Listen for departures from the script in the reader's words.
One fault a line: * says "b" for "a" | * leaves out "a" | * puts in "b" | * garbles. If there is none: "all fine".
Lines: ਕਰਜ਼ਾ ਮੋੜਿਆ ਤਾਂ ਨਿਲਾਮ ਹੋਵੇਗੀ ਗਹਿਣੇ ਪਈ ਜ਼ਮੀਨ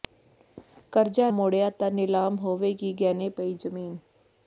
all fine